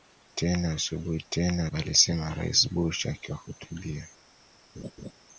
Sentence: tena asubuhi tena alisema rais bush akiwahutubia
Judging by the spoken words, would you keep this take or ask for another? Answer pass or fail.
pass